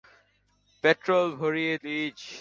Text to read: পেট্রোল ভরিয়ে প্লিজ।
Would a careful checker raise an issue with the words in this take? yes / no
no